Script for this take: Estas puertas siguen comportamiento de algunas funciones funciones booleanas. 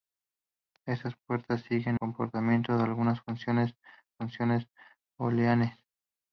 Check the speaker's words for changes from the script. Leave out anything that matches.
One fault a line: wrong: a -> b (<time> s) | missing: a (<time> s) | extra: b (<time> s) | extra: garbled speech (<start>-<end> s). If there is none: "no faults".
no faults